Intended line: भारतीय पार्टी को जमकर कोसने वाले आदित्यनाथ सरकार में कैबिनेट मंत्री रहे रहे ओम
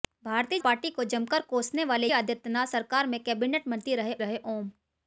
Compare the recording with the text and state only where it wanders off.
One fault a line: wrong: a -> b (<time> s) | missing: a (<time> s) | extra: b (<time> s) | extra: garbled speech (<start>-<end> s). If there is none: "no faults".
no faults